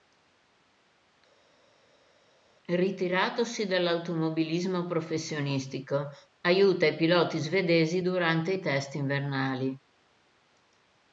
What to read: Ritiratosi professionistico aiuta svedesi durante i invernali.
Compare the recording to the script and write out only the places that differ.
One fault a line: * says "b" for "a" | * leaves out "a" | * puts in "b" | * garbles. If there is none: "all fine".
* puts in "dall'automobilismo"
* puts in "i piloti"
* puts in "test"